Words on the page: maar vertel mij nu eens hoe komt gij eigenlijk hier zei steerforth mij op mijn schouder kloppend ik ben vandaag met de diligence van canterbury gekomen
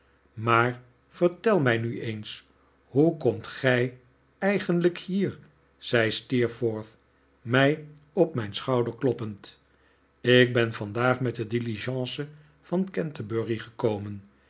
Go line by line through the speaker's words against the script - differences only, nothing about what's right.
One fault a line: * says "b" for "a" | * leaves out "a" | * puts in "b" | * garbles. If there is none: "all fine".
all fine